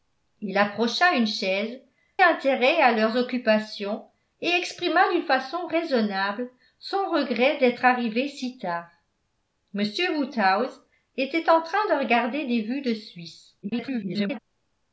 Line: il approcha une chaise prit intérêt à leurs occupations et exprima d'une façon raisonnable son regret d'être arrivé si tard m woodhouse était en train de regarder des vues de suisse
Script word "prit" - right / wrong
wrong